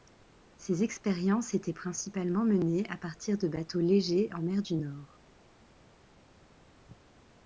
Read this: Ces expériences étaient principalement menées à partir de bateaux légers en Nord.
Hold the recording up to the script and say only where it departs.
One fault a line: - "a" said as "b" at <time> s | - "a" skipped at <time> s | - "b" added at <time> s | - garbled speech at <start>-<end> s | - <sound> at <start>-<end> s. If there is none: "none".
- "mer du" added at 4.4 s